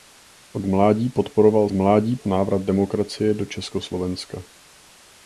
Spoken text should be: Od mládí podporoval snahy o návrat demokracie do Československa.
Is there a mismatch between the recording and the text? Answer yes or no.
yes